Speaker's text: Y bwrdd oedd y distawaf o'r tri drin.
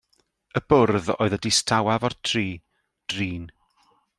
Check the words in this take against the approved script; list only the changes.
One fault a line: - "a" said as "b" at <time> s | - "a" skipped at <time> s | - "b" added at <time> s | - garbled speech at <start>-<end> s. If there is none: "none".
none